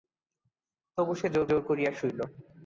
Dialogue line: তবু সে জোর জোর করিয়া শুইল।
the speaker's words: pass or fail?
pass